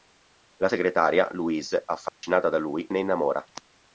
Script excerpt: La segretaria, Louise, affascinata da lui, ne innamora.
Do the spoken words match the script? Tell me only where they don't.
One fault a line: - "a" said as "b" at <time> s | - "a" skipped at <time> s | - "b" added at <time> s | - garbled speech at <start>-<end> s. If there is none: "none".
none